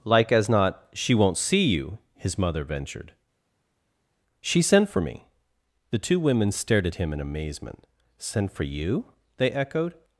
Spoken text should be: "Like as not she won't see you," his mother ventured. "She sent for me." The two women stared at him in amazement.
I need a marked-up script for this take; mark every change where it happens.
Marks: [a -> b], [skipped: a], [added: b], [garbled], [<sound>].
"Like as not she won't see you," his mother ventured. "She sent for me." The two women stared at him in amazement. [added: Sent for you they echoed]